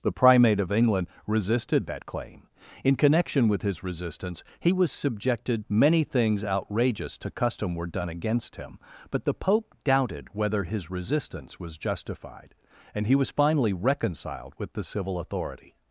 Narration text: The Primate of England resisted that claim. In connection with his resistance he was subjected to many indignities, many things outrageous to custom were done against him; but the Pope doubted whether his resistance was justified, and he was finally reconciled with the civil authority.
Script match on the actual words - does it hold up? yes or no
no